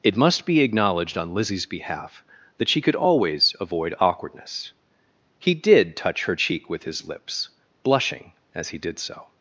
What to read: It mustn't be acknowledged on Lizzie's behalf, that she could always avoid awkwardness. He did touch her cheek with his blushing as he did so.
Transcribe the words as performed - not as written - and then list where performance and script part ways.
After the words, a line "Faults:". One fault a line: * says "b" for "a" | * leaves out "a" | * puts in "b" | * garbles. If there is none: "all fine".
It must be acknowledged on Lizzie's behalf, that she could always avoid awkwardness. He did touch her cheek with his lips, blushing as he did so.
Faults:
* says "must" for "mustn't"
* puts in "lips"